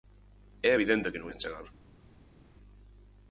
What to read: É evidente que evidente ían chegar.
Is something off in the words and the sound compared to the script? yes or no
yes